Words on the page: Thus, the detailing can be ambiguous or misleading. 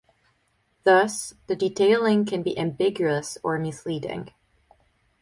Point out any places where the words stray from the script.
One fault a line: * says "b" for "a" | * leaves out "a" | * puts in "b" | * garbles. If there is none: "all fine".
all fine